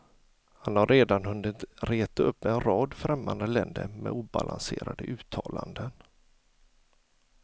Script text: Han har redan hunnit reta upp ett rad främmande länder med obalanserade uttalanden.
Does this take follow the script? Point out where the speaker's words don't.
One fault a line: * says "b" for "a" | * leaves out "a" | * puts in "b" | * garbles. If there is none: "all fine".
* says "en" for "ett"